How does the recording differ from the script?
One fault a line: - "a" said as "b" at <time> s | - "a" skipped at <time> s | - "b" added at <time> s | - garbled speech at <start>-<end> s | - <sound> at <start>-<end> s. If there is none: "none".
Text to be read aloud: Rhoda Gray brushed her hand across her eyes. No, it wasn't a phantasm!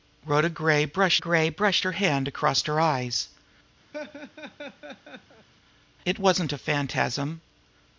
- "Gray brushed" added at 1.2 s
- "No" skipped at 3.3 s
- laugh at 3.9-5.5 s